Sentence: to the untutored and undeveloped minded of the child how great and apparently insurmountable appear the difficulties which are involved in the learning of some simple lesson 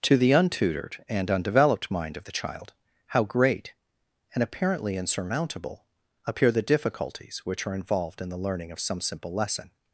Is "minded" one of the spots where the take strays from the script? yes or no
yes